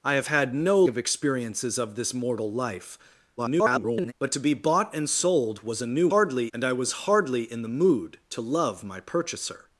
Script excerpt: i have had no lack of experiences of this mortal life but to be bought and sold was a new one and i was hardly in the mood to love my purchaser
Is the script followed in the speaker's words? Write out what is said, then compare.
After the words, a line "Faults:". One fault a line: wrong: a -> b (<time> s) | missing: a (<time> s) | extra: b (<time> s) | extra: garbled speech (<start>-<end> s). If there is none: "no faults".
i have had no of experiences of this mortal life [garbled] but to be bought and sold was a new hardly and i was hardly in the mood to love my purchaser
Faults:
missing: lack (0.8 s)
extra: garbled speech (3.4-4.1 s)
wrong: one -> hardly (6.1 s)